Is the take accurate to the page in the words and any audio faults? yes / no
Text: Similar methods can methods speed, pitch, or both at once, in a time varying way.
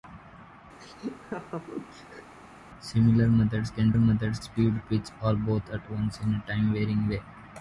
no